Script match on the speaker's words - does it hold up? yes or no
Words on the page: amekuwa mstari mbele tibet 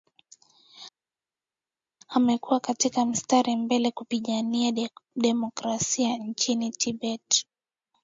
no